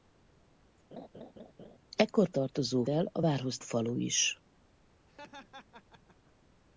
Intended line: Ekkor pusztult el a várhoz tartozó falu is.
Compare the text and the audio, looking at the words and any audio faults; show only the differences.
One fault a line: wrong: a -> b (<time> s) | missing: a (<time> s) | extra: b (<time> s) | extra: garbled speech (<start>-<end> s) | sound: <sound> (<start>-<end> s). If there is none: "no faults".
sound: laugh (0.9-1.8 s)
wrong: pusztult -> tartozó (2.3 s)
missing: tartozó (3.6 s)
sound: laugh (5.1-6.3 s)